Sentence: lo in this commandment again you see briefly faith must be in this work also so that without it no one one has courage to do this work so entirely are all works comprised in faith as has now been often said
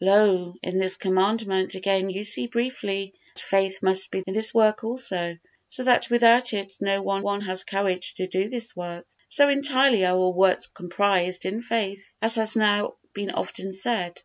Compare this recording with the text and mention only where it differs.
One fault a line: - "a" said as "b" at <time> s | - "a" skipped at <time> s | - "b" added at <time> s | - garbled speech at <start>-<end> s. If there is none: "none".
none